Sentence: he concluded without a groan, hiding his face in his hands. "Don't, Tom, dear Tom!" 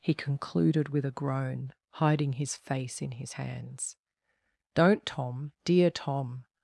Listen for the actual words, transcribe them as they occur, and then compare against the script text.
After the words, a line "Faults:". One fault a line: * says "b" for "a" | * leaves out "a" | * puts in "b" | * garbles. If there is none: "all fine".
he concluded with a groan, hiding his face in his hands. "Don't, Tom, dear Tom!"
Faults:
* says "with" for "without"